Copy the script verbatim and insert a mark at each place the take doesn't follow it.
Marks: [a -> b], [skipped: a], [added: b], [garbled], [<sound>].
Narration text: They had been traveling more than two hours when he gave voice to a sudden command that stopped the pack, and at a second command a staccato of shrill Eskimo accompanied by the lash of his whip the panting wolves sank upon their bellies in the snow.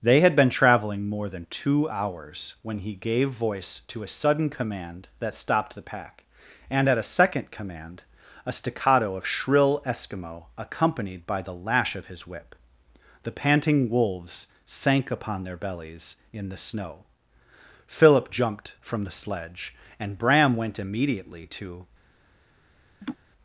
They had been traveling more than two hours when he gave voice to a sudden command that stopped the pack, and at a second command a staccato of shrill Eskimo accompanied by the lash of his whip the panting wolves sank upon their bellies in the snow. [added: Philip jumped from the sledge and Bram went immediately to] [laugh]